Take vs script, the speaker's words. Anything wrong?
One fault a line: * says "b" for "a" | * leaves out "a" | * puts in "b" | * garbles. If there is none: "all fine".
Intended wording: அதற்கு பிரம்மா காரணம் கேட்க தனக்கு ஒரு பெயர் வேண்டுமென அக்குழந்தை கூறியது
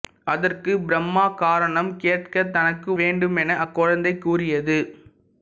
* leaves out "ஒரு பெயர்"